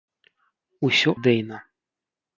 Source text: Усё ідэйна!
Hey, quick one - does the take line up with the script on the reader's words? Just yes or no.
yes